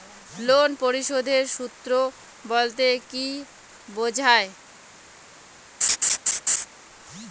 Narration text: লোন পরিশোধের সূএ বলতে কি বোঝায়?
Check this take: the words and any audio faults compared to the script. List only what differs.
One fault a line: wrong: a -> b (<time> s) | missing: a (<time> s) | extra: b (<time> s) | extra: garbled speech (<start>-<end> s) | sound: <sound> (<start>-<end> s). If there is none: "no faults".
sound: laugh (5.8-6.7 s)